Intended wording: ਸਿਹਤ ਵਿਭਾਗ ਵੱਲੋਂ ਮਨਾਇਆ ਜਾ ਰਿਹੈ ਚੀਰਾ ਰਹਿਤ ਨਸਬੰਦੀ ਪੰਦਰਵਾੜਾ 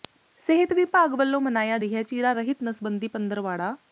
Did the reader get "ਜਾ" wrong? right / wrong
wrong